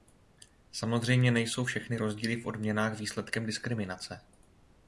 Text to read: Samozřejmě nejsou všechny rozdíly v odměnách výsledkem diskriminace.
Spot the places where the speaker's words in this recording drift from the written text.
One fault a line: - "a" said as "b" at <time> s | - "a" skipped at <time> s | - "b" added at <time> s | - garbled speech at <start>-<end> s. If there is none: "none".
none